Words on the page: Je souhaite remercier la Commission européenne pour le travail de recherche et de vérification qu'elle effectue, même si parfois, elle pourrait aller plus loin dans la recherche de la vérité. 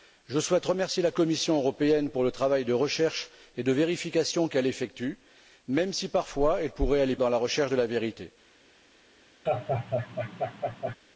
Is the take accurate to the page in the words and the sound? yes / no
no